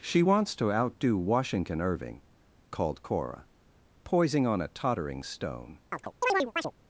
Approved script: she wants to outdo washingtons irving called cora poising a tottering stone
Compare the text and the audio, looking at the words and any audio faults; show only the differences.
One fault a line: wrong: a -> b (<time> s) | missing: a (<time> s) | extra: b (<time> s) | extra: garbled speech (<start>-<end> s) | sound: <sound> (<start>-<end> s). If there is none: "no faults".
wrong: washingtons -> washington (1.2 s)
extra: on (4.5 s)
sound: chirp (5.9-6.7 s)